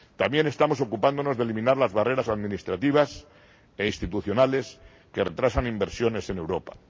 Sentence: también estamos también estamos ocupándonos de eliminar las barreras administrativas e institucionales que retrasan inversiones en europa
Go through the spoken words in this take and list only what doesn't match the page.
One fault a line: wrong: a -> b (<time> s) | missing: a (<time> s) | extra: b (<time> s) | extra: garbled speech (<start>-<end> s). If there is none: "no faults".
missing: también estamos (0.8 s)